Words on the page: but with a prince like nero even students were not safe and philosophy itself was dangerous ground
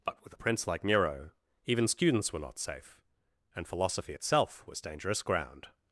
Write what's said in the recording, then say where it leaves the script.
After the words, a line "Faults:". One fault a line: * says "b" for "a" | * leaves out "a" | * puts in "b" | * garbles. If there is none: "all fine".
but with a prince like nero even students were not safe and philosophy itself was dangerous ground
Faults:
all fine